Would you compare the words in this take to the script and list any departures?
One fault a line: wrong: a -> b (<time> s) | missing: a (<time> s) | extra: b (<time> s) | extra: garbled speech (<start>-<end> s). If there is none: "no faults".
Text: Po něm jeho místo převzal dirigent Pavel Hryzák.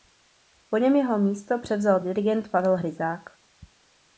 no faults